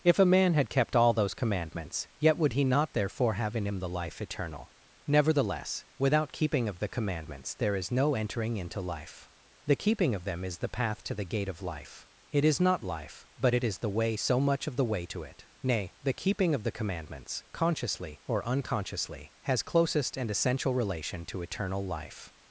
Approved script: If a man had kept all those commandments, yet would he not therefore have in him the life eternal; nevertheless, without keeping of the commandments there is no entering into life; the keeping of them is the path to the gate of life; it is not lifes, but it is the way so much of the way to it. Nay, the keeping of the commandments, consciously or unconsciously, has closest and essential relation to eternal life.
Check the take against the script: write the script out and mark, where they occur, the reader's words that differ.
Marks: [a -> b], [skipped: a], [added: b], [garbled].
If a man had kept all those commandments, yet would he not therefore have in him the life eternal; nevertheless, without keeping of the commandments there is no entering into life; the keeping of them is the path to the gate of life; it is not [lifes, -> life] but it is the way so much of the way to it. Nay, the keeping of the commandments, consciously or unconsciously, has closest and essential relation to eternal life.